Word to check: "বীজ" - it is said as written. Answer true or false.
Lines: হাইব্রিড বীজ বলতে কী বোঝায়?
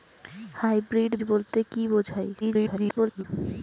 false